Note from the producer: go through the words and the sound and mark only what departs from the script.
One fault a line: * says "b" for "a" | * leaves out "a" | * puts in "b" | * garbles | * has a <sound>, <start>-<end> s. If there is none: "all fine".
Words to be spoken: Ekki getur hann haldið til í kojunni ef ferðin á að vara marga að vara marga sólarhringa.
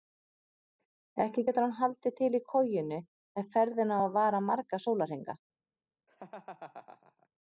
* leaves out "að vara marga"
* has a laugh, 6.1-7.3 s